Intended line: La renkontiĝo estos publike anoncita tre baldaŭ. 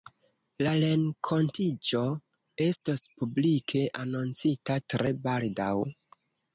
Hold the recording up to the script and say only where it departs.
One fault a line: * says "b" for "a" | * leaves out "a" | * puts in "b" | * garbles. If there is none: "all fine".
all fine